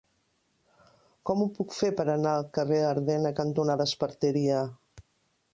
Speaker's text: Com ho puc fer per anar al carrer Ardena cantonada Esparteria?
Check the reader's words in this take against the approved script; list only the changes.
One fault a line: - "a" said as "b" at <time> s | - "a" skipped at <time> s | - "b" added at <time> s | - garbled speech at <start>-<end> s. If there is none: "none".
none